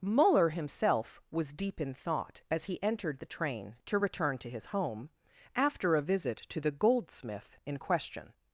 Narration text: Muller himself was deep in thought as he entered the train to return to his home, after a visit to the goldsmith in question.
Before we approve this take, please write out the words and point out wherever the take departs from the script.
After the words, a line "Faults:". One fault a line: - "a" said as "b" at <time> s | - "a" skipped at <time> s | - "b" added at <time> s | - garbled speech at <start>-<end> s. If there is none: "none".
Muller himself was deep in thought as he entered the train to return to his home, after a visit to the goldsmith in question.
Faults:
none